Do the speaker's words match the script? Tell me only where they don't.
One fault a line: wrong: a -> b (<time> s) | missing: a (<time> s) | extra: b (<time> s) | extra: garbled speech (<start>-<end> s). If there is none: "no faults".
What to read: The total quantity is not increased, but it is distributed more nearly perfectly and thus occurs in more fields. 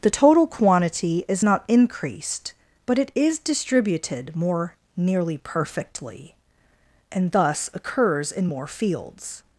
no faults